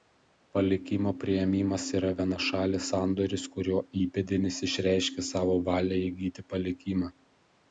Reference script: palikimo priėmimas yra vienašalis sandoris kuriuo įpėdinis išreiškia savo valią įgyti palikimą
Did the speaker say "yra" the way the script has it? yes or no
yes